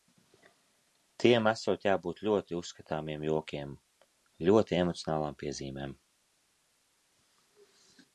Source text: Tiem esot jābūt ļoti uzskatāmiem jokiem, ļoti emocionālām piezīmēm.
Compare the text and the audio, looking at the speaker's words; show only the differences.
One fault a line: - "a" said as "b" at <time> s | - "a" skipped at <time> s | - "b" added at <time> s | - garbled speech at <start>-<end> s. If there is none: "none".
none